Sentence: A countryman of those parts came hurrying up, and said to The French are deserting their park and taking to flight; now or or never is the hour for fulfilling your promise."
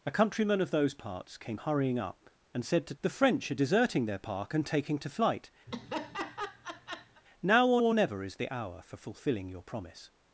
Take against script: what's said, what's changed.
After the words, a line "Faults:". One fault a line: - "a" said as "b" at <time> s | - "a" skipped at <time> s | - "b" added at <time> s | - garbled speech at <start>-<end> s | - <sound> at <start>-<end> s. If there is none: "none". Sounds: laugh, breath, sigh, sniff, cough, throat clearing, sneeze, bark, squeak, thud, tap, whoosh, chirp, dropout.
A countryman of those parts came hurrying up, and said to The French are deserting their park and taking to flight; now or or never is the hour for fulfilling your promise."
Faults:
- laugh at 5.7-7.2 s